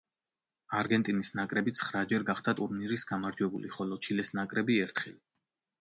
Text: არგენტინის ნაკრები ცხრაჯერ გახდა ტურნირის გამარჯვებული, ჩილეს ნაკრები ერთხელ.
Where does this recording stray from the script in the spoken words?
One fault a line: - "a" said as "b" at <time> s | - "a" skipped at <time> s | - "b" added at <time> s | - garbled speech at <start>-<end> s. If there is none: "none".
- "ხოლო" added at 3.8 s